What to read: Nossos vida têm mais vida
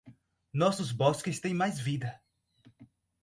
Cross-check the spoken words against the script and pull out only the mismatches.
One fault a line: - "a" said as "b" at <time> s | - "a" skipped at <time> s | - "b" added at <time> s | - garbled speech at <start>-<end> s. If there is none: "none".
- "vida" said as "bosques" at 0.9 s